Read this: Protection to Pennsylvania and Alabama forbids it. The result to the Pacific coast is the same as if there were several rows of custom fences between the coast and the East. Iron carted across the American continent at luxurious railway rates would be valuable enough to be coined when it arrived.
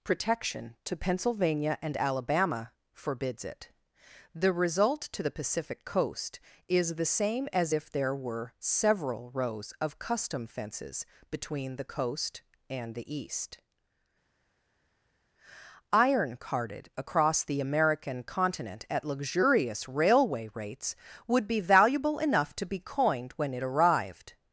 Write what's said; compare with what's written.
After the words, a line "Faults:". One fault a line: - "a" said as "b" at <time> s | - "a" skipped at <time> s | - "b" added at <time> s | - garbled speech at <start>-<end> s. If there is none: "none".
Protection to Pennsylvania and Alabama forbids it. The result to the Pacific coast is the same as if there were several rows of custom fences between the coast and the East. Iron carted across the American continent at luxurious railway rates would be valuable enough to be coined when it arrived.
Faults:
none